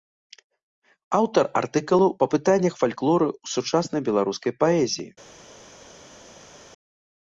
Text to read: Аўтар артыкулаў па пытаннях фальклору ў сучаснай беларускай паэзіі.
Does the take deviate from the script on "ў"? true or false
false